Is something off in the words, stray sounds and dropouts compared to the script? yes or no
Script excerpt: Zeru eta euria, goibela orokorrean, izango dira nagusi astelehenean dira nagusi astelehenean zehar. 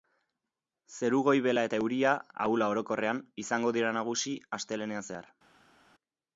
yes